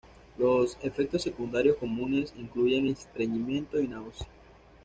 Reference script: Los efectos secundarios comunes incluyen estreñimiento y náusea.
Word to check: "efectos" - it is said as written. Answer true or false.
true